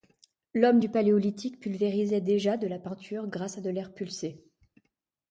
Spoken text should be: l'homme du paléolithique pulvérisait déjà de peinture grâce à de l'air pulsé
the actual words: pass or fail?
fail